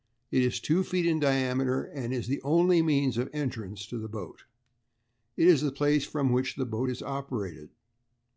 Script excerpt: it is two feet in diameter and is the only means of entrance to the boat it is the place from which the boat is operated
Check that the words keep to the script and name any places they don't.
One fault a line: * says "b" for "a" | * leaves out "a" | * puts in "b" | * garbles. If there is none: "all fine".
all fine